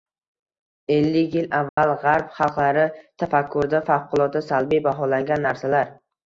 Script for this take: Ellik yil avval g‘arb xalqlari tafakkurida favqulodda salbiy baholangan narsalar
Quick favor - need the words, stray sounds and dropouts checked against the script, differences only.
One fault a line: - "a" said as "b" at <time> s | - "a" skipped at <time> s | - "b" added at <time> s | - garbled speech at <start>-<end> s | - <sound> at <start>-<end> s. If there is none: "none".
- dropout at 1.7-1.8 s